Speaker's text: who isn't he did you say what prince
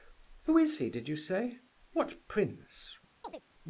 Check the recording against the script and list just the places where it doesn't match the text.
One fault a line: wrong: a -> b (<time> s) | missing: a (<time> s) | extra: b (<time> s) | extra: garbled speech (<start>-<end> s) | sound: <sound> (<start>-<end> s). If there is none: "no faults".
wrong: isn't -> is (0.6 s)
sound: chirp (3.2-3.4 s)